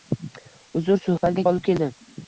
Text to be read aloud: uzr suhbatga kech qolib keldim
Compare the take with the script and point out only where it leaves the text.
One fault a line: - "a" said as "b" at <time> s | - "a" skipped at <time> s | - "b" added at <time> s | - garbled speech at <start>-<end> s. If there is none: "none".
- "kech" skipped at 1.4 s